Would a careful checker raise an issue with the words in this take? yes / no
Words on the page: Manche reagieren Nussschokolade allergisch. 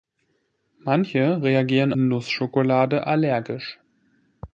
no